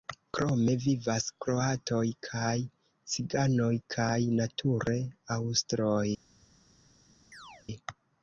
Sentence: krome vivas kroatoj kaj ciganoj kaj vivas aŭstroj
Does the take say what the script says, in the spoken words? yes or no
no